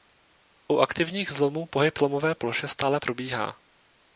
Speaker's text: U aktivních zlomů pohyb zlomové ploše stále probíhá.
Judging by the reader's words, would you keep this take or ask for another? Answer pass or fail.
pass